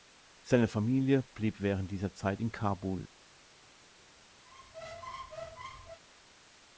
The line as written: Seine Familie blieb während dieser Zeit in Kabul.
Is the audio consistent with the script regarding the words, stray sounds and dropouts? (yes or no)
no